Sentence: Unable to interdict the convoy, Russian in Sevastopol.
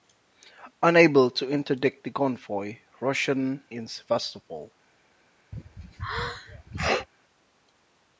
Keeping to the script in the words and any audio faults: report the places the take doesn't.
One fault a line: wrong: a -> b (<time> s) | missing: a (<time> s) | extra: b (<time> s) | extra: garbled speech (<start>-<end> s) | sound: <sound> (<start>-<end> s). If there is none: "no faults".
sound: sneeze (5.5-7.1 s)